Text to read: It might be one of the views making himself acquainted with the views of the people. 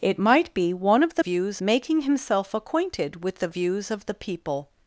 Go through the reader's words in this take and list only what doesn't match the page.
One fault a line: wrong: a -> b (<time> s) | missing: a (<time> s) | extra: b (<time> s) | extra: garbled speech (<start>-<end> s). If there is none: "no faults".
no faults